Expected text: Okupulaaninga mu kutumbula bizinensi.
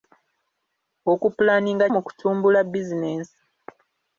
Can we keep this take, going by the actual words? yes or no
yes